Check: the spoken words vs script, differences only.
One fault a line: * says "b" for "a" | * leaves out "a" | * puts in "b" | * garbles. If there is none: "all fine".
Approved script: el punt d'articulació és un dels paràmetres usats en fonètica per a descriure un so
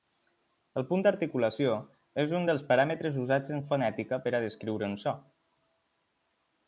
all fine